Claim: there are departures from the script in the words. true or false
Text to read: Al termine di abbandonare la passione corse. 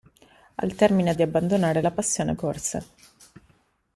false